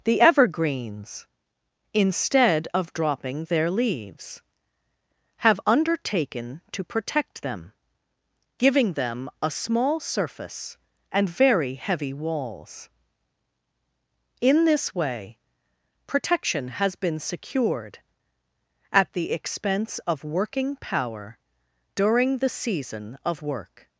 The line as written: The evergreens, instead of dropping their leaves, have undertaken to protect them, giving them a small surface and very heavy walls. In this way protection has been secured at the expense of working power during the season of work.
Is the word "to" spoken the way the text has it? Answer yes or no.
yes